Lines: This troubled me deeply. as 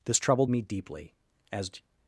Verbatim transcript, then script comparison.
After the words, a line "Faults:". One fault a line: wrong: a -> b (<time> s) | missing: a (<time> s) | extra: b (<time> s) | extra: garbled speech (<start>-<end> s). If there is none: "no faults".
This troubled me deeply. as
Faults:
no faults